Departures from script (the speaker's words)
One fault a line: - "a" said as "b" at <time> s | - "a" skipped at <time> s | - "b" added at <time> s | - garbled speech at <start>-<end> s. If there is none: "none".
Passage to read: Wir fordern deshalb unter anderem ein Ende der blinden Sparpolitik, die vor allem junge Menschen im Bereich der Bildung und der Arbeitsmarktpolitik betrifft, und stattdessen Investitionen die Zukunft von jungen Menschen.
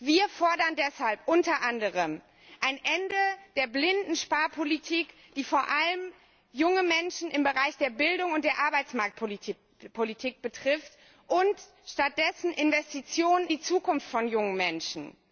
none